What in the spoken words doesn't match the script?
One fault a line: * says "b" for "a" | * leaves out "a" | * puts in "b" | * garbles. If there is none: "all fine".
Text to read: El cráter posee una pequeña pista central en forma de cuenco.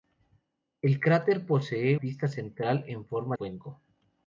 * leaves out "una pequeña"
* leaves out "de"